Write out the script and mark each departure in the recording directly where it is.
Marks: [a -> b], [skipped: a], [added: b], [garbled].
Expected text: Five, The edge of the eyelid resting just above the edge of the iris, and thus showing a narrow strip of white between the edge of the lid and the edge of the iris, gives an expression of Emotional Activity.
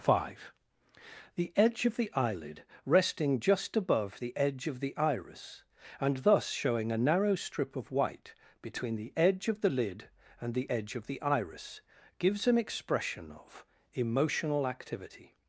Five, The edge of the eyelid resting just above the edge of the iris, and thus showing a narrow strip of white between the edge of the lid and the edge of the iris, gives an expression of Emotional Activity.